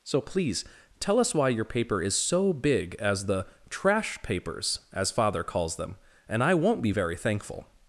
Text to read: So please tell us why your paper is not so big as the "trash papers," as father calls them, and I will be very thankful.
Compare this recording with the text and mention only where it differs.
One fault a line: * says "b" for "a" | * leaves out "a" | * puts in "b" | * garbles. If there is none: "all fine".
* leaves out "not"
* says "won't" for "will"